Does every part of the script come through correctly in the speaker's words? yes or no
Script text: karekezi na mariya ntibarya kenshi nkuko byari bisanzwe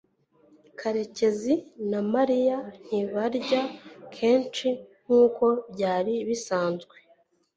yes